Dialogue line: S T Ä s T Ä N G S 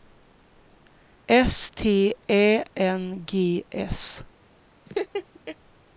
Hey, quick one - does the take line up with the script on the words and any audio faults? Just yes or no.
no